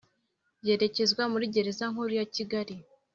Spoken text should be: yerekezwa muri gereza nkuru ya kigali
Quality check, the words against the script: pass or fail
pass